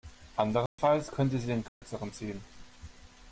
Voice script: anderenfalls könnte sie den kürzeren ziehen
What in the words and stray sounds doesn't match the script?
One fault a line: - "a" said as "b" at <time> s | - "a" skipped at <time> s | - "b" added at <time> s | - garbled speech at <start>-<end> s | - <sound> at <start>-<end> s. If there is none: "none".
- dropout at 0.7-0.8 s
- dropout at 1.7-1.8 s